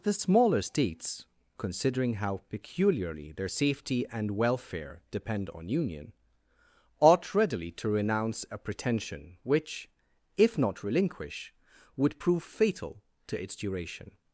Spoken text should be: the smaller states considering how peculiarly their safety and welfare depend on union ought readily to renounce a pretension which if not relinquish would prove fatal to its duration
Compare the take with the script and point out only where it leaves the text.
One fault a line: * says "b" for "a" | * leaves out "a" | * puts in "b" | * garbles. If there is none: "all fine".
all fine